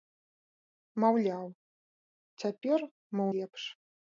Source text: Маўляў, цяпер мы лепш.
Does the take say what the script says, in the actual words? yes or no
yes